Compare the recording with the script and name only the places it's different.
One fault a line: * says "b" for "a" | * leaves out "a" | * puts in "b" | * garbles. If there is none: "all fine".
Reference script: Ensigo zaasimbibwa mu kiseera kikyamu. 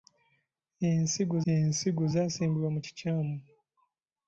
* puts in "ensigo"
* leaves out "kiseera"